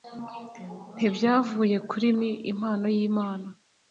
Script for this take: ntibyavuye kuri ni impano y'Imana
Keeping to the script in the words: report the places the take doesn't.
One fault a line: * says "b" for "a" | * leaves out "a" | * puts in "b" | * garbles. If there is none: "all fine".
all fine